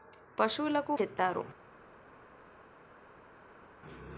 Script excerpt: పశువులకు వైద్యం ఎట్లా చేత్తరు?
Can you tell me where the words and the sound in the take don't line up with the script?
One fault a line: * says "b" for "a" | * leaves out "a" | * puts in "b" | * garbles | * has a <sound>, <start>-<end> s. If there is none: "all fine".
* leaves out "వైద్యం ఎట్లా"